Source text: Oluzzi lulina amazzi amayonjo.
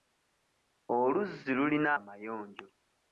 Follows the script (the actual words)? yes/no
no